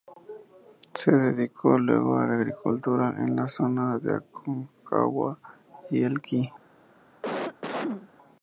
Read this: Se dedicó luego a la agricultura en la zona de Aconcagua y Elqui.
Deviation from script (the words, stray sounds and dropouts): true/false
true